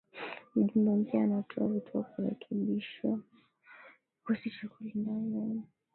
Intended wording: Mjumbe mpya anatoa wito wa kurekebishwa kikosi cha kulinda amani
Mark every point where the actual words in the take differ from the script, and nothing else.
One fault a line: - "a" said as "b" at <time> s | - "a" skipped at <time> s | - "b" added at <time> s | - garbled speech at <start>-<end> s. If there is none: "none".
none